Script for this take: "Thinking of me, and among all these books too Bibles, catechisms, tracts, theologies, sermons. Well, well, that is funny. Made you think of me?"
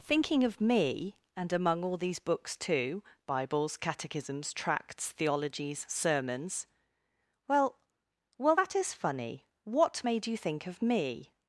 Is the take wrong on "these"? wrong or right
right